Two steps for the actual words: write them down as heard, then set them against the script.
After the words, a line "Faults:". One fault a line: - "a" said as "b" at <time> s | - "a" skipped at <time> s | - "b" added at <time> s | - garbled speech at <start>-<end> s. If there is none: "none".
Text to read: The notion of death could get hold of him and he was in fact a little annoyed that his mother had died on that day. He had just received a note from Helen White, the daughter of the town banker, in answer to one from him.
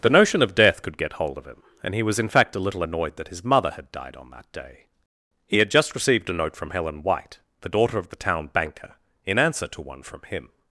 The notion of death could get hold of him and he was in fact a little annoyed that his mother had died on that day. He had just received a note from Helen White, the daughter of the town banker, in answer to one from him.
Faults:
none